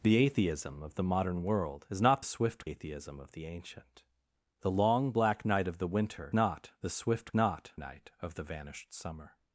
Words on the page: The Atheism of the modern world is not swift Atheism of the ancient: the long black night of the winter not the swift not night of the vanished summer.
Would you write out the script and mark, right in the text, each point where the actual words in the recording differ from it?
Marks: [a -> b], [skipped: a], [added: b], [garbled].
The Atheism of the modern world is not swift Atheism of the ancient: the long black night of the winter not the swift not night of the vanished summer.